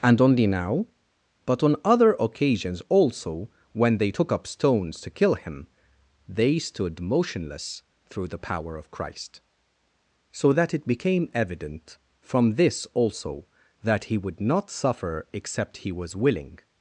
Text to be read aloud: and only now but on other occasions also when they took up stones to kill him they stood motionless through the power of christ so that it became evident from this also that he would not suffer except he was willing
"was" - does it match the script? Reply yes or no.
yes